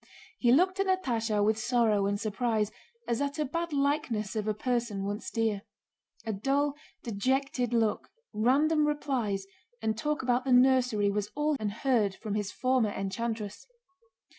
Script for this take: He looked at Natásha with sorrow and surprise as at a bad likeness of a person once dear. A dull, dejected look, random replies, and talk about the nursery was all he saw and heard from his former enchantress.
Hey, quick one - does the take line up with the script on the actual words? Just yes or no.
no